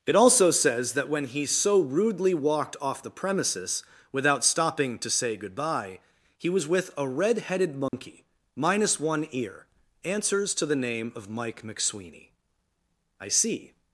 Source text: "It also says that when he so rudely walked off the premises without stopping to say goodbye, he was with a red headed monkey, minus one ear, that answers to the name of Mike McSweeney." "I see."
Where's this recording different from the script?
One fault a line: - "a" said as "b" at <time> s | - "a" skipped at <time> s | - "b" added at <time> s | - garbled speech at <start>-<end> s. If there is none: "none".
- "that" skipped at 9.7 s